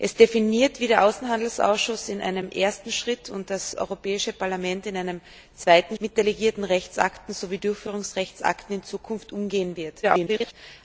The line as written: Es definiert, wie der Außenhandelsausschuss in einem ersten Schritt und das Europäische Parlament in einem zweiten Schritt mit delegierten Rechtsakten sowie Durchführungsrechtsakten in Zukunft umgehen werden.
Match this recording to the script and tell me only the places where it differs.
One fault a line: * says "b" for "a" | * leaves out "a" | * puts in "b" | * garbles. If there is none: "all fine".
* leaves out "Schritt"
* garbles